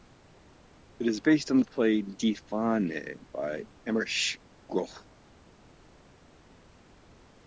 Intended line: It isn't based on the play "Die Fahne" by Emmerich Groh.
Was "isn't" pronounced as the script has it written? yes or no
no